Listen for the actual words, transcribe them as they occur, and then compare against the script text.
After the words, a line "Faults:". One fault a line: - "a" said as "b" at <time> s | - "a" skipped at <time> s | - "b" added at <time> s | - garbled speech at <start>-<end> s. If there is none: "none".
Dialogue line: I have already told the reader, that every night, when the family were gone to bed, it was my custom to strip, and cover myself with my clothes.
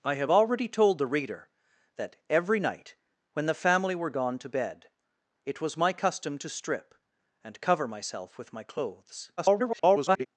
I have already told the reader, that every night, when the family were gone to bed, it was my custom to strip, and cover myself with my clothes. [garbled]
Faults:
- garbled speech at 9.4-10.3 s